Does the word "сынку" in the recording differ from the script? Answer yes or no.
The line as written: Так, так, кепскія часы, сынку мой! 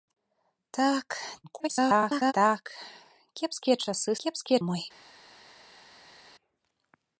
yes